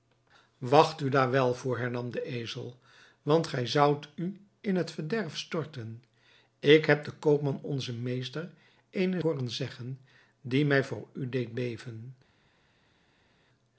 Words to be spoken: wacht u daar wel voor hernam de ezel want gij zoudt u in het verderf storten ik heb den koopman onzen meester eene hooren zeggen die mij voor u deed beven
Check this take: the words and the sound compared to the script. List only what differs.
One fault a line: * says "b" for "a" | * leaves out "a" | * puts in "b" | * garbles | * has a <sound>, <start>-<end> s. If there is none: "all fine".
all fine